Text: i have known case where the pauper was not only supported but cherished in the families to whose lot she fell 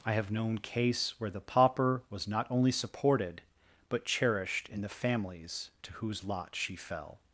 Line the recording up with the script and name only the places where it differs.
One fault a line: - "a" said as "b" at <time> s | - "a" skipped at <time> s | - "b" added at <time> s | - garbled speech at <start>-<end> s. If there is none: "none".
none